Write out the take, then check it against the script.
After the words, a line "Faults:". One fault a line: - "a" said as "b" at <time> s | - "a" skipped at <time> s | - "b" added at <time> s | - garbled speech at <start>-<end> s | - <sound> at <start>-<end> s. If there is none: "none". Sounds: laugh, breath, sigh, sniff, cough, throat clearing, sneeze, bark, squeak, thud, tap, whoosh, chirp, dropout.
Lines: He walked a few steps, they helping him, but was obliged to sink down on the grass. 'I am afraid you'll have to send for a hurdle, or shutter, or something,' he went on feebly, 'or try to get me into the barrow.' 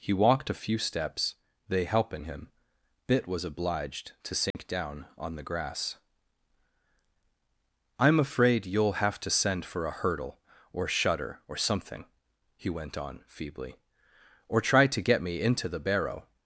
He walked a few steps, they helping him, bit was obliged to sink down on the grass. 'I am afraid you'll have to send for a hurdle, or shutter, or something,' he went on feebly, 'or try to get me into the barrow.'
Faults:
- "but" said as "bit" at 3.0 s
- dropout at 4.5-4.5 s